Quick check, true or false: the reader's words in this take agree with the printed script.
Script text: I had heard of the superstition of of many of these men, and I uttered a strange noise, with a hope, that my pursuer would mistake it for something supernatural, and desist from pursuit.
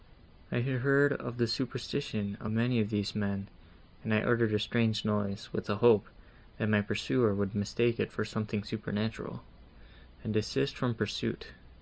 false